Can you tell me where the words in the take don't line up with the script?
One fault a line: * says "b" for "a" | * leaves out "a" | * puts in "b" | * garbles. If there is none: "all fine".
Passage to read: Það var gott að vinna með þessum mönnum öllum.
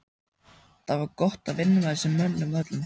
all fine